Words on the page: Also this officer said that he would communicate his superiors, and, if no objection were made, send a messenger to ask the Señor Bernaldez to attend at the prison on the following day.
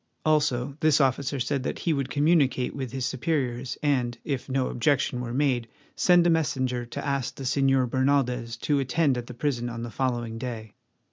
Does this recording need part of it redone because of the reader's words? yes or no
yes